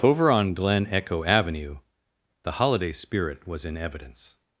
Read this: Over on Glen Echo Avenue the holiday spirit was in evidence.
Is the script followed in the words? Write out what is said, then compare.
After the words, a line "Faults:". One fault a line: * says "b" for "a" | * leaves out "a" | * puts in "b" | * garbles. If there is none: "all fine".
Over on Glen Echo Avenue the holiday spirit was in evidence.
Faults:
all fine